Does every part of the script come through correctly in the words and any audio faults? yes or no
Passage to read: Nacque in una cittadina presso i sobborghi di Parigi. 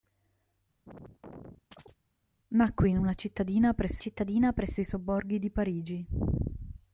no